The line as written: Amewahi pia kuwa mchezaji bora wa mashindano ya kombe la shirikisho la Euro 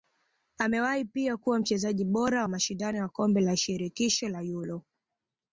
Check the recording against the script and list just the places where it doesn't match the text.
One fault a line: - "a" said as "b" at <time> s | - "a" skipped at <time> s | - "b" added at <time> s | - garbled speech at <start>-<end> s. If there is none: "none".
none